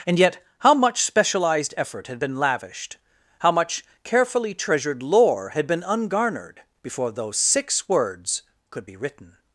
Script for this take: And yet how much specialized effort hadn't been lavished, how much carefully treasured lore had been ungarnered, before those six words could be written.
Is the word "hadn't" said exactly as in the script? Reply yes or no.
no